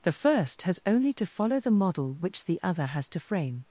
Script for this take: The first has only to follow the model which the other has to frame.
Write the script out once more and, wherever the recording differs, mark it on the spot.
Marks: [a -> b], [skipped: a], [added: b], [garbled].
The first has only to follow the model which the other has to frame.